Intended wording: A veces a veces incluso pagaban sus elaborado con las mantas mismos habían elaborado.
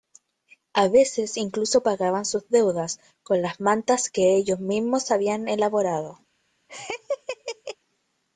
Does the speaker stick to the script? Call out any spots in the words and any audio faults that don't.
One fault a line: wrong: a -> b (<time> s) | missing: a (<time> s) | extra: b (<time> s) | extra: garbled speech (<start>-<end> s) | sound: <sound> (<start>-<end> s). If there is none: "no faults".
missing: a veces (1.4 s)
wrong: elaborado -> deudas (2.5 s)
extra: que ellos (4.1 s)
sound: laugh (6.7-7.8 s)